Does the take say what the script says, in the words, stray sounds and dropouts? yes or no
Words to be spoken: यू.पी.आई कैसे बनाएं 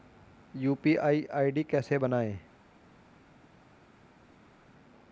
no